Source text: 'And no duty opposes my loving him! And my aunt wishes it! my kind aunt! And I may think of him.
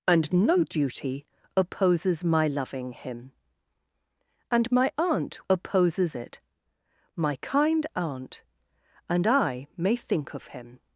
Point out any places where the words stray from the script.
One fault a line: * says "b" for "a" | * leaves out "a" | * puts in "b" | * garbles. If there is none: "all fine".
* says "opposes" for "wishes"